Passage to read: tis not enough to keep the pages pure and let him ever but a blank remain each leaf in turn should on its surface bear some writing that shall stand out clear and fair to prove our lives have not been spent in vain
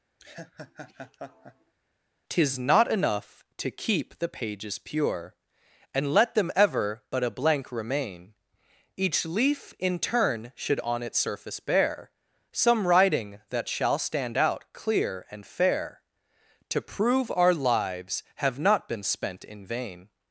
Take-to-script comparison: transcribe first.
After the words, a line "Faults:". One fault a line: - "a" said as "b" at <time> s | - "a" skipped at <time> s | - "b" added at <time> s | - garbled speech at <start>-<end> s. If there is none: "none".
tis not enough to keep the pages pure and let them ever but a blank remain each leaf in turn should on its surface bear some writing that shall stand out clear and fair to prove our lives have not been spent in vain
Faults:
- "him" said as "them" at 6.3 s